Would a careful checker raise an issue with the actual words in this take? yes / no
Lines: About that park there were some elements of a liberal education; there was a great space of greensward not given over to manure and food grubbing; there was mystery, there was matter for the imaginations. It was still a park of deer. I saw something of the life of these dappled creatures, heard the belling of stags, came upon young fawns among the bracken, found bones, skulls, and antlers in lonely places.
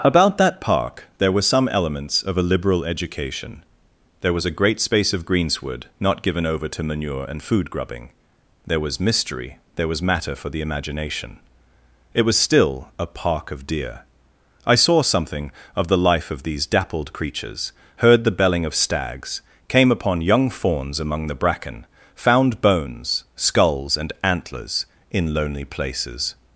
yes